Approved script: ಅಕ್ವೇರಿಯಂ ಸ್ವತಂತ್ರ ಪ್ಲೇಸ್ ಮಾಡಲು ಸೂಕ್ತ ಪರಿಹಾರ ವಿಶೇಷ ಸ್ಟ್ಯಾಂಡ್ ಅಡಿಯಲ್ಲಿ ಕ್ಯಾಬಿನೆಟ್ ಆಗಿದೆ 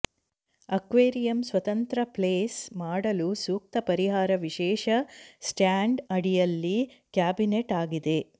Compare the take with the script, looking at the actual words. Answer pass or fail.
pass